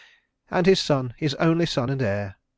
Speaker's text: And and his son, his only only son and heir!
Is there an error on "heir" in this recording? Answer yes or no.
no